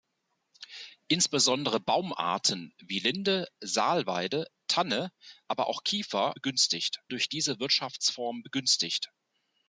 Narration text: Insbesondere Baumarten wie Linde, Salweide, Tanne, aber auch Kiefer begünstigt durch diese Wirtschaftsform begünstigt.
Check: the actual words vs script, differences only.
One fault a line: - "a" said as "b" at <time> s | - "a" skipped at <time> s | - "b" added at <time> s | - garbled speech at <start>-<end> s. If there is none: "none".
none